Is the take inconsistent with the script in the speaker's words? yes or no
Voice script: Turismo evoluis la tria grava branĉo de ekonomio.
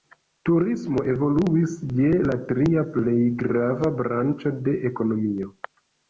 yes